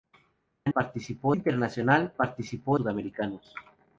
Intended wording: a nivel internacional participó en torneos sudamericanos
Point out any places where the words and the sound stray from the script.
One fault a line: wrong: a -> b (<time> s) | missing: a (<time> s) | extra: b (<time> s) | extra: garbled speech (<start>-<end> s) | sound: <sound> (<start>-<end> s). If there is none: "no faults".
wrong: nivel -> participó (0.7 s)
missing: en torneos (2.8 s)